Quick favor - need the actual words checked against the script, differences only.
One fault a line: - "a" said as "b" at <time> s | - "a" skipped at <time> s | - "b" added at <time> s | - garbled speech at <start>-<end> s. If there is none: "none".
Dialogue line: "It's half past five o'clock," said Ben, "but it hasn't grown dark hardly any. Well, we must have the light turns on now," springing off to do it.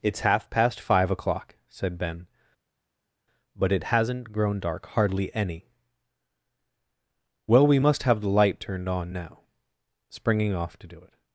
- "turns" said as "turned" at 8.6 s